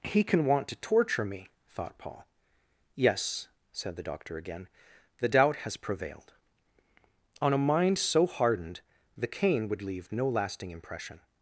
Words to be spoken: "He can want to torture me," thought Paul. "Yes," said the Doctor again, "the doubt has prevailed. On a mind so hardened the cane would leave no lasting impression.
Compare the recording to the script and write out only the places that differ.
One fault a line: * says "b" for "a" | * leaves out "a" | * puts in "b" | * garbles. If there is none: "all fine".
all fine